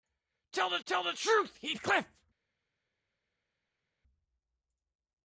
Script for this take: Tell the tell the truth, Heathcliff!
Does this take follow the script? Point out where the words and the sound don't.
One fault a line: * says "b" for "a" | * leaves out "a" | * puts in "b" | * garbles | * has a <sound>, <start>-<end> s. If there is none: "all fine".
all fine